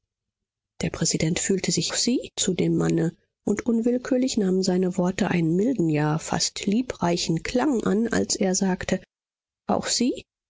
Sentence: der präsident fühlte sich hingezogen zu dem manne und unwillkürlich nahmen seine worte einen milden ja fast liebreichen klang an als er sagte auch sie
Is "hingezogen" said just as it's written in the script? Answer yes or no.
no